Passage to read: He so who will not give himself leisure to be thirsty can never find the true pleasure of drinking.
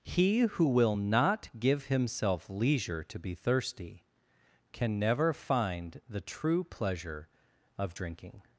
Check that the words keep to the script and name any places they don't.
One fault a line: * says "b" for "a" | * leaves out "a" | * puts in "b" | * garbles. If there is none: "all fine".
* leaves out "so"